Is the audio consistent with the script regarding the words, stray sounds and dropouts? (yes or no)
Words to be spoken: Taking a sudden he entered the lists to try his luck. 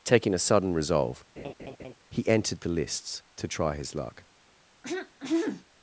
no